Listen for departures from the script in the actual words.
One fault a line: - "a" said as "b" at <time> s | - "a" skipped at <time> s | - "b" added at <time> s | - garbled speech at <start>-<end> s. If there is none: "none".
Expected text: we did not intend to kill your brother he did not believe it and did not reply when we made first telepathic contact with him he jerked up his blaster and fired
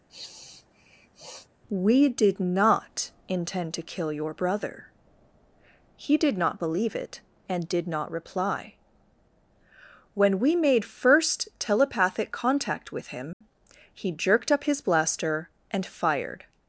none